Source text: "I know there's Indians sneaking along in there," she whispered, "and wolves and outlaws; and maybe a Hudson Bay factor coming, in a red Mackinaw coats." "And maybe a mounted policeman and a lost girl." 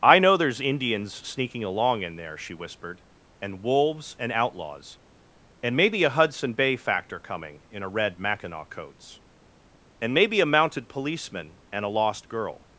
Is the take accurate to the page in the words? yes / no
yes